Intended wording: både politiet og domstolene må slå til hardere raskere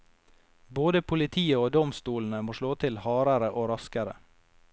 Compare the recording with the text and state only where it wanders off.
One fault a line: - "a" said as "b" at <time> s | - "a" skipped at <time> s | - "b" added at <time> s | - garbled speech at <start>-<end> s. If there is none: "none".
- "og" added at 3.5 s